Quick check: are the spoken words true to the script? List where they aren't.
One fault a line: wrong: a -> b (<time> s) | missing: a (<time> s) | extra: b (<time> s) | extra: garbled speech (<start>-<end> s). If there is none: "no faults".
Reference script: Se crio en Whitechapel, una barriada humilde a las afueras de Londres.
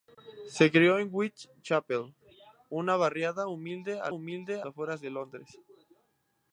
wrong: las -> humilde (4.1 s)